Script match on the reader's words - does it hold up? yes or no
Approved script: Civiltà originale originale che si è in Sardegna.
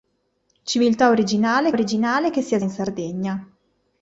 yes